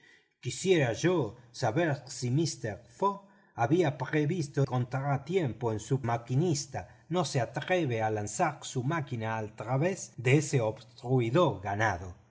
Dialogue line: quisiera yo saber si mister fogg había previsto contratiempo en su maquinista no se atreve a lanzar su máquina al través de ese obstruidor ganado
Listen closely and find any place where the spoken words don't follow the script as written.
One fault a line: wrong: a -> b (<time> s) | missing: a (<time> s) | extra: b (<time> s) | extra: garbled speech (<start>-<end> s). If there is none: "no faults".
no faults